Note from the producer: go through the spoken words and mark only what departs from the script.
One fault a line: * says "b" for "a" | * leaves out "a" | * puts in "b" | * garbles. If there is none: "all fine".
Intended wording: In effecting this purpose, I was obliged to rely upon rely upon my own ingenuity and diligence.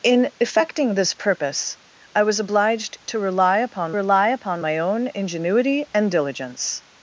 all fine